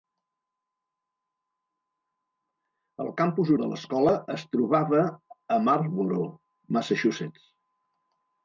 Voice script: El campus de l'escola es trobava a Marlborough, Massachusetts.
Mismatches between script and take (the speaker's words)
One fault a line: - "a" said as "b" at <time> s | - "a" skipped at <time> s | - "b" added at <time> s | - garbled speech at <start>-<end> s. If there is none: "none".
none